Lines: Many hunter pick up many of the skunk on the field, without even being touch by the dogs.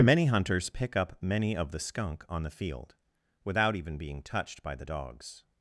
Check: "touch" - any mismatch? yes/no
yes